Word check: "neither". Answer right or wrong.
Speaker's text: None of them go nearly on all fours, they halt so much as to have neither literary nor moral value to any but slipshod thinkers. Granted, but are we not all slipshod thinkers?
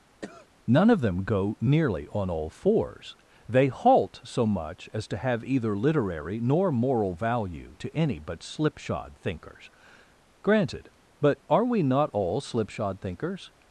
wrong